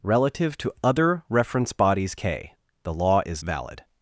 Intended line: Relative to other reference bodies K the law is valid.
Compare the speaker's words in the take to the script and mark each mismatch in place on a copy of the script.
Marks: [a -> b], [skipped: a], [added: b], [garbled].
Relative to other reference bodies K the law is valid.